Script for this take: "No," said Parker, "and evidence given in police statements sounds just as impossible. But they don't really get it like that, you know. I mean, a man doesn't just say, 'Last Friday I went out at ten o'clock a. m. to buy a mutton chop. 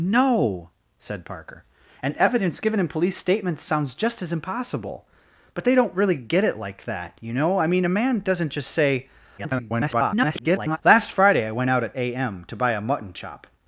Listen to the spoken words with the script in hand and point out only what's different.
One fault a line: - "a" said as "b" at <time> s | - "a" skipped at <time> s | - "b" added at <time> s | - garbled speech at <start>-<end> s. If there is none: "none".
- garbled speech at 9.4-10.8 s
- "ten o'clock" skipped at 11.9 s